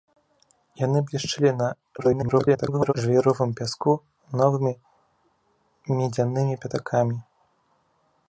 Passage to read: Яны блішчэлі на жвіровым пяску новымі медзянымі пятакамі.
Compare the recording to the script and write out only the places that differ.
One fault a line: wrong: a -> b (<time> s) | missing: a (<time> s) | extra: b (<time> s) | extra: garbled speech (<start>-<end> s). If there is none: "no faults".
extra: garbled speech (2.0-2.9 s)